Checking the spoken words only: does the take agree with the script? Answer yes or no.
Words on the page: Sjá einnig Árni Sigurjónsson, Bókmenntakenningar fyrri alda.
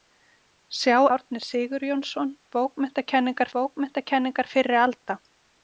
no